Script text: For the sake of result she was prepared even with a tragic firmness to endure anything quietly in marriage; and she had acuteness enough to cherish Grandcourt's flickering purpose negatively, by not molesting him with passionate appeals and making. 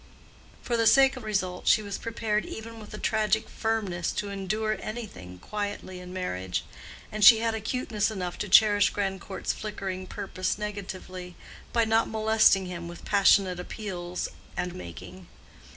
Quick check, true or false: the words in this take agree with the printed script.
true